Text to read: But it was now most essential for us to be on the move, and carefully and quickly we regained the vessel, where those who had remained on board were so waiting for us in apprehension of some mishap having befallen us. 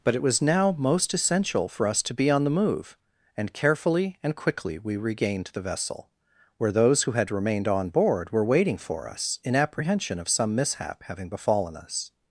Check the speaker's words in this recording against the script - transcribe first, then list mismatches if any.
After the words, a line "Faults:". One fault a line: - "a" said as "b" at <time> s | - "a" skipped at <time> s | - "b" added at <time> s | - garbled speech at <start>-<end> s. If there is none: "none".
But it was now most essential for us to be on the move, and carefully and quickly we regained the vessel, where those who had remained on board were waiting for us in apprehension of some mishap having befallen us.
Faults:
- "so" skipped at 8.4 s